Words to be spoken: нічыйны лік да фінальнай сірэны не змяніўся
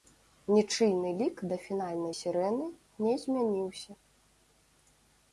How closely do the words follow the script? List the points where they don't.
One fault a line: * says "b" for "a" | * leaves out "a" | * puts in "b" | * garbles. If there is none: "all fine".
all fine